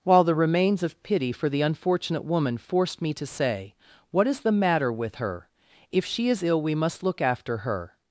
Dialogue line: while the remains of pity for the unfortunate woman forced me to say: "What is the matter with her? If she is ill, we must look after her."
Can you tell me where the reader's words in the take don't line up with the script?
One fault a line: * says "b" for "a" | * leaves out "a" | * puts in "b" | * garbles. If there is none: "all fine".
all fine